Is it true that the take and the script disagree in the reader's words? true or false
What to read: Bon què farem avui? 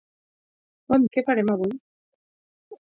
false